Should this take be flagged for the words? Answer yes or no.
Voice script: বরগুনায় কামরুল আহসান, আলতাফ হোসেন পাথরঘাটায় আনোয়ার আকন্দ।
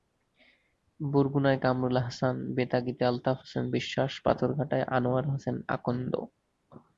yes